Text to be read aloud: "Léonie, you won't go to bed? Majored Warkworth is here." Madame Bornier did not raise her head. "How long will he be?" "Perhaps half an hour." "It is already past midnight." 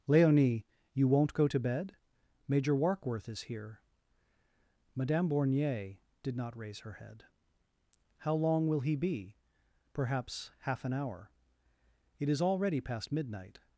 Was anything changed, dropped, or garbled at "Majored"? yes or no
yes